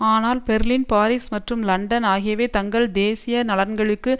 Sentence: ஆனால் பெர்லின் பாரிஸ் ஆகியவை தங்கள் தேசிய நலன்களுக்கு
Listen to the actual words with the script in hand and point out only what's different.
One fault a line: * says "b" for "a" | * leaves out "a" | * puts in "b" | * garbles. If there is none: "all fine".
* puts in "மற்றும் லண்டன்"